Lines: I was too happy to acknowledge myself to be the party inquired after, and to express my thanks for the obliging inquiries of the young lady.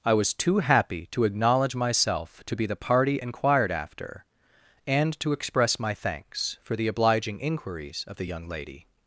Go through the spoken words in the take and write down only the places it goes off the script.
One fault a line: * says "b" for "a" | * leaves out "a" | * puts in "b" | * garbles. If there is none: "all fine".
all fine